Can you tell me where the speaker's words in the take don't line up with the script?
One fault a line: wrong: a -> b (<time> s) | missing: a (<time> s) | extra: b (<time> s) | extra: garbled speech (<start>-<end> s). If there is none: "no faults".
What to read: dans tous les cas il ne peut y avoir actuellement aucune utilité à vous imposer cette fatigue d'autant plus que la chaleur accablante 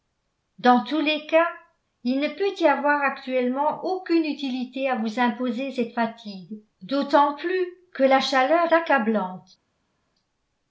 no faults